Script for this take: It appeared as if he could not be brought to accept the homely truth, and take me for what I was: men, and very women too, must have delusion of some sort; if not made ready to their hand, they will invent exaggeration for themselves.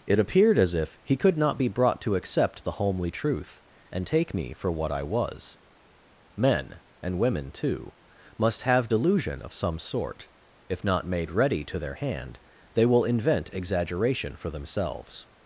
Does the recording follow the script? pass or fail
fail